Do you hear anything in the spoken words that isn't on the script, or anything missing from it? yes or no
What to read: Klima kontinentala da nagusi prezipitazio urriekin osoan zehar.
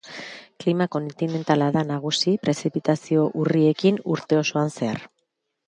yes